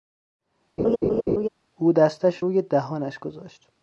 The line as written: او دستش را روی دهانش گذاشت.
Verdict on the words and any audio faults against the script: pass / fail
fail